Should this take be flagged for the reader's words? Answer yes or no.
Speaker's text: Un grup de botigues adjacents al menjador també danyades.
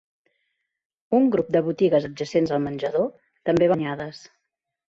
no